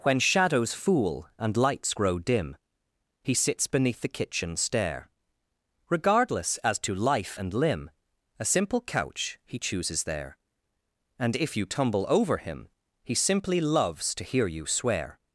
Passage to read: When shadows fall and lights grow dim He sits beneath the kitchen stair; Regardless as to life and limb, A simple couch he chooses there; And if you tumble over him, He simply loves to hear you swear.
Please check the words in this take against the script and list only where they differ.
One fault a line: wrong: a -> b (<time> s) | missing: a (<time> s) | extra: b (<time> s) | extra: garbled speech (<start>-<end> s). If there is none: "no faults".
wrong: fall -> fool (0.7 s)